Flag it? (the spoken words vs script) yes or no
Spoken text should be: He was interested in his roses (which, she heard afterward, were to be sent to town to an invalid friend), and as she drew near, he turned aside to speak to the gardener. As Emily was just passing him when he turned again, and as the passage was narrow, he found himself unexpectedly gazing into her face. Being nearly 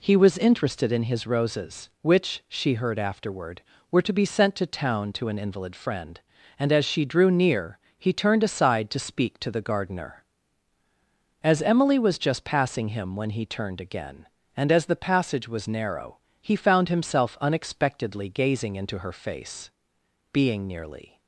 no